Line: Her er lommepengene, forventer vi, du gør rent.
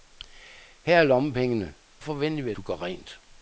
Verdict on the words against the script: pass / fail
pass